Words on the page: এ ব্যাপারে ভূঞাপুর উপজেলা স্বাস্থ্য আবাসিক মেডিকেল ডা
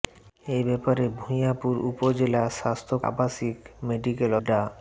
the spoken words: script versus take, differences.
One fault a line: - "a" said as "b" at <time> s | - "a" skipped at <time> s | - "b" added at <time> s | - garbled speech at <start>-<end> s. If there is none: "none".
none